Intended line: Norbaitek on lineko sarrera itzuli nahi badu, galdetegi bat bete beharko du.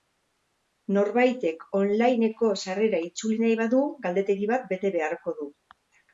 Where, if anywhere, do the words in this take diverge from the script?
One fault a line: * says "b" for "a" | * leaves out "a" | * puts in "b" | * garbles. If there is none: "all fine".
all fine